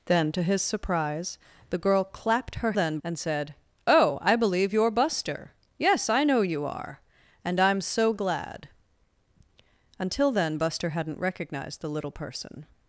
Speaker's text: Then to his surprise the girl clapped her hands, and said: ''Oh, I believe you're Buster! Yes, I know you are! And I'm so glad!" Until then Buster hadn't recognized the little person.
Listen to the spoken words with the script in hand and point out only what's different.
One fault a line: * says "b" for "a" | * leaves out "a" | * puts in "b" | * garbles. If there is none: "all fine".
* says "then" for "hands"